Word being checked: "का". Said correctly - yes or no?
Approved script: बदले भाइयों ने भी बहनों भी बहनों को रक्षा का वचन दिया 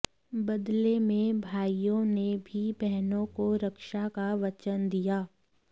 yes